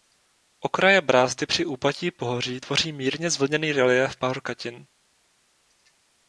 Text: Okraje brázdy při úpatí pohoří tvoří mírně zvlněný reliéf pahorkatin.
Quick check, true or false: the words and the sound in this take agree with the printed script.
true